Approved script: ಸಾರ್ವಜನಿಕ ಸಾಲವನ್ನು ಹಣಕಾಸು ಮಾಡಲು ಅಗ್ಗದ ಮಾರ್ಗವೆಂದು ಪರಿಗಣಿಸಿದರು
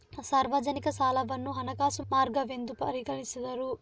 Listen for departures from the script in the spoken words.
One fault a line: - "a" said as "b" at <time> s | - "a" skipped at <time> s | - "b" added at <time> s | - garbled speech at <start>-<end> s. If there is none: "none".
- "ಮಾಡಲು ಅಗ್ಗದ" skipped at 2.0 s